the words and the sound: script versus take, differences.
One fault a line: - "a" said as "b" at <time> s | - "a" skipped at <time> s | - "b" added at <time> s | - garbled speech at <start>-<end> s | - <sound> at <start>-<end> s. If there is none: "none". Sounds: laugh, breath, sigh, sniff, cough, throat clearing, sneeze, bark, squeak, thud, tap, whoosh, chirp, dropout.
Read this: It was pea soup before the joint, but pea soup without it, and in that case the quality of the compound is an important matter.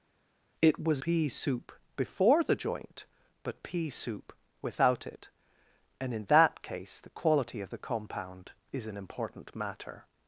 none